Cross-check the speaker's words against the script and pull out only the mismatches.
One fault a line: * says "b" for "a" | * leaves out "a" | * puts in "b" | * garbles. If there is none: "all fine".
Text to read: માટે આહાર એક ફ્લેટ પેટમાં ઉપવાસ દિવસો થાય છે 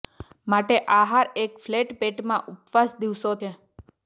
* leaves out "થાય"